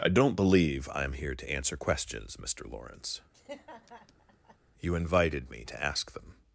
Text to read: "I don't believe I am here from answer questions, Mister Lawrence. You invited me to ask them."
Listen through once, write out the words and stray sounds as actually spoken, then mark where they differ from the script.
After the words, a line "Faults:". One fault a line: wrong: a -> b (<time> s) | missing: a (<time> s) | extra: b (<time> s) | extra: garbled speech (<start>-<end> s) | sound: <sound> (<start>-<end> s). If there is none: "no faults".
"I don't believe I am here to answer questions, Mister Lawrence. You invited me to ask them."
Faults:
wrong: from -> to (1.4 s)
sound: laugh (3.3-4.6 s)